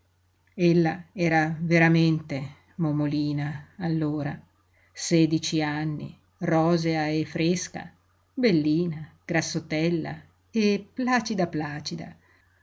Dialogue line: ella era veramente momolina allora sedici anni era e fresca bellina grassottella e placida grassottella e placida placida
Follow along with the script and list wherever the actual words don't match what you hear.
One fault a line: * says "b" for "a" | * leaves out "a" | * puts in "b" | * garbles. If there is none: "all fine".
* says "rosea" for "era"
* leaves out "grassottella e placida"